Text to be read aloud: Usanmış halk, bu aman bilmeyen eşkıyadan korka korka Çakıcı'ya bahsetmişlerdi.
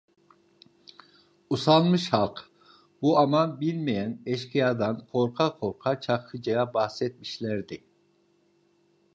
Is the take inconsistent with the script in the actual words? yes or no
no